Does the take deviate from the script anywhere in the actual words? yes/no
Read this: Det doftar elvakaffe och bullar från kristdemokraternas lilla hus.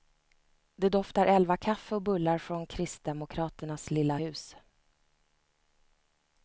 no